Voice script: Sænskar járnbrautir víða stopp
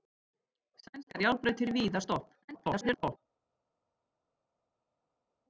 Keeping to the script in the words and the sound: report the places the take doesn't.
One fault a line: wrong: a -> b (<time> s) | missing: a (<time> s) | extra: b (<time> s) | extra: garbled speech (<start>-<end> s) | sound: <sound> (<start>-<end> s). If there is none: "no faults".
extra: garbled speech (2.4-3.2 s)